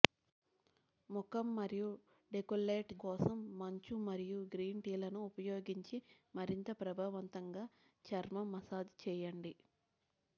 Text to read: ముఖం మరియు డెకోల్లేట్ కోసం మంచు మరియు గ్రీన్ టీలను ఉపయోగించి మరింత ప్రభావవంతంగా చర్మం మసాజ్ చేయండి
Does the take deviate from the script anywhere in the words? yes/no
no